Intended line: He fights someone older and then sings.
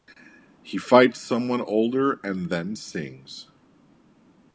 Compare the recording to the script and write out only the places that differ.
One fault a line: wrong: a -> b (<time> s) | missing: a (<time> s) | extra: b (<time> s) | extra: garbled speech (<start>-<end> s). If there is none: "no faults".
no faults